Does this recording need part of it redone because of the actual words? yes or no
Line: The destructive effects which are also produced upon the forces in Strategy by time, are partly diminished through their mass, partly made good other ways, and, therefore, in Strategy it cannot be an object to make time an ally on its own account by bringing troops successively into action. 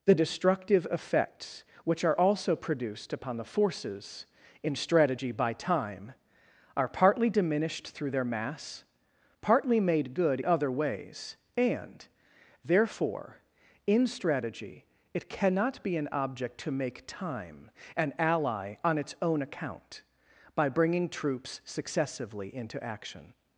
no